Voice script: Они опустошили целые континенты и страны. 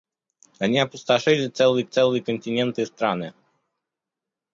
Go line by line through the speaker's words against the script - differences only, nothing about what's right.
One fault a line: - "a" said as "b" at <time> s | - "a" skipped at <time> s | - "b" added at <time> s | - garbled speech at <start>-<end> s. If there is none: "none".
- "целые" added at 1.8 s